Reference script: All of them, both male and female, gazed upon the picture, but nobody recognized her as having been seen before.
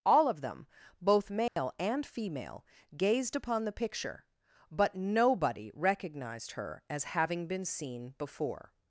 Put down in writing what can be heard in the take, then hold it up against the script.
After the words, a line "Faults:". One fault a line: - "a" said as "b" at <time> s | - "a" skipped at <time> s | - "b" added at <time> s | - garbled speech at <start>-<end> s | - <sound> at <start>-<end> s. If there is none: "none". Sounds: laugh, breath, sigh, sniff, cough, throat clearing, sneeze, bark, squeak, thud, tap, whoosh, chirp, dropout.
All of them, both male and female, gazed upon the picture, but nobody recognized her as having been seen before.
Faults:
- dropout at 1.5-1.6 s